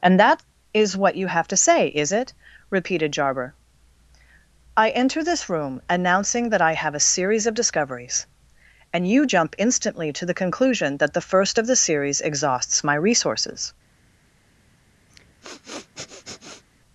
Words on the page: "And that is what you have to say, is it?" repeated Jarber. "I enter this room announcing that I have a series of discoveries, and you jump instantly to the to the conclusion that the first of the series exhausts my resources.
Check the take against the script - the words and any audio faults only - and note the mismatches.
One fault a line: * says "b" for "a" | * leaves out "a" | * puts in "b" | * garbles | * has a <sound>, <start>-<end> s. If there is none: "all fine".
* leaves out "to the"
* has a sniff, 15.1-16.6 s